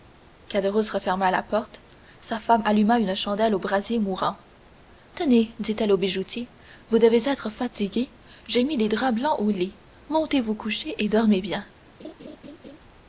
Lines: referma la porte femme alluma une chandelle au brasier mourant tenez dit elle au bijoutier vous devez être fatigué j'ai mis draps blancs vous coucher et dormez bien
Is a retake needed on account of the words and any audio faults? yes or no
yes